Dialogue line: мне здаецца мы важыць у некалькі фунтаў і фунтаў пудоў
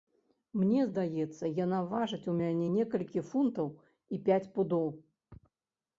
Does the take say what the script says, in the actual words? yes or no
no